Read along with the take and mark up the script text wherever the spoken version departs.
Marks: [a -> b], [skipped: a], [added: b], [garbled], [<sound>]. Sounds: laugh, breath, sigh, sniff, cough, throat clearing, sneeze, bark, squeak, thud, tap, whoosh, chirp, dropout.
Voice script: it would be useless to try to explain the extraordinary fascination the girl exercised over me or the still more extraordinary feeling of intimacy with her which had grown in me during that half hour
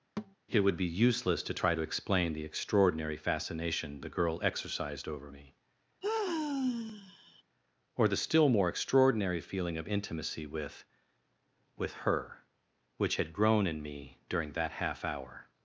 [thud] it would be useless to try to explain the extraordinary fascination the girl exercised over me [sigh] or the still more extraordinary feeling of intimacy with [added: with] her which had grown in me during that half hour